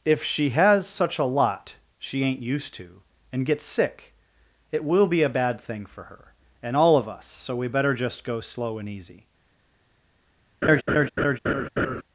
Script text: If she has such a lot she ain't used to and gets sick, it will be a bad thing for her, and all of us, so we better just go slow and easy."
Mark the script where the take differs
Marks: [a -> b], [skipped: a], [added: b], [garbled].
If she has such a lot she ain't used to and gets sick, it will be a bad thing for her, and all of us, so we better just go slow and easy."